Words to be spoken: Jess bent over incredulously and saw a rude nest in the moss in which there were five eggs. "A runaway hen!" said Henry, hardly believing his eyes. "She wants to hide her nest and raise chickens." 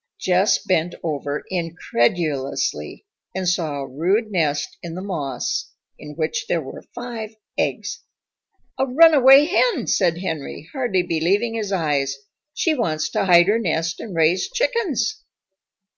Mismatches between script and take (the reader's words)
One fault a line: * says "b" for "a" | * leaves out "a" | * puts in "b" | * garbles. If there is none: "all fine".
all fine